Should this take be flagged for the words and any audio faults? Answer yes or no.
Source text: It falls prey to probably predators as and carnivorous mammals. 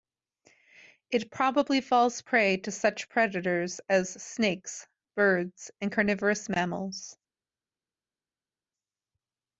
yes